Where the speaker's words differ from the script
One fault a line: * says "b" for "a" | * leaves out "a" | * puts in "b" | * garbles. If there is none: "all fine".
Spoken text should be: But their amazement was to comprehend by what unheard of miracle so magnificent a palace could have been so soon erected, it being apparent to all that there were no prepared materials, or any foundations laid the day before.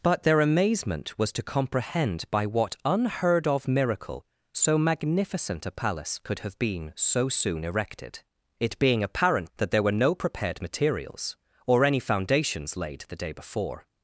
* leaves out "to all"